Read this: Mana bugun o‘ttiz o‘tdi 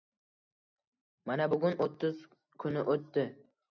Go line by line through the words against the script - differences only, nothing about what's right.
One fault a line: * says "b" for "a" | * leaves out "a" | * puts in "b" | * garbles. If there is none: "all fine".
* puts in "kuni"